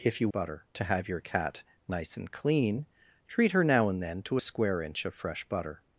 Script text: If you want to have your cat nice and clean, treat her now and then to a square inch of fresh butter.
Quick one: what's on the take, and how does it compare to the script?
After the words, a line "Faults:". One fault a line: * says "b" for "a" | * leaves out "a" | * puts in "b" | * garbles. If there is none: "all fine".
If you butter to have your cat nice and clean, treat her now and then to a square inch of fresh butter.
Faults:
* says "butter" for "want"